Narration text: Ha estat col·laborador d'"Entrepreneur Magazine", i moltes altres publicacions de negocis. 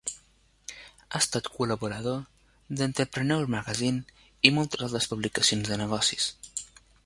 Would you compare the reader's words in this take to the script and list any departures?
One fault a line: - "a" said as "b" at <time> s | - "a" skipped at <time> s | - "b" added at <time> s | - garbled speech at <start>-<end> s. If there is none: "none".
none